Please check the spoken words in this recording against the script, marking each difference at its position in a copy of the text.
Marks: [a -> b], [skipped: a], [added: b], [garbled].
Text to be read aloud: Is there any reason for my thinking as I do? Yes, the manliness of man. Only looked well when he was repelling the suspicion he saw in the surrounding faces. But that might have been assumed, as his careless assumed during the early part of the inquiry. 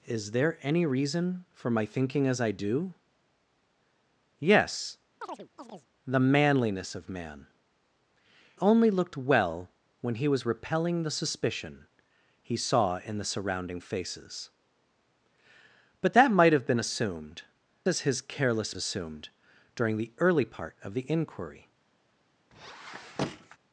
Is there any reason for my thinking as I do? Yes, the manliness of man. Only looked well when he was repelling the suspicion he saw in the surrounding faces. But that might have been assumed, as his careless assumed during the early part of the inquiry.